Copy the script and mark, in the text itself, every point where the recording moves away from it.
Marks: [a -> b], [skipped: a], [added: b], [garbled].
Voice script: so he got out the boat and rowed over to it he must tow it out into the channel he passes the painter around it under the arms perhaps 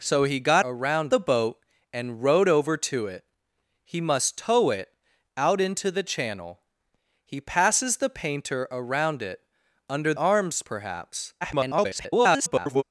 so he got [out -> around] the boat and rowed over to it he must tow it out into the channel he passes the painter around it under [skipped: the] arms perhaps [garbled]